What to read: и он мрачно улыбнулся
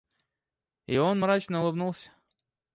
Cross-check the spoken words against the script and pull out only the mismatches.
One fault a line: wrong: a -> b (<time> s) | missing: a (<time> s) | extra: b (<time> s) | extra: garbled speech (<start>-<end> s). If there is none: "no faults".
no faults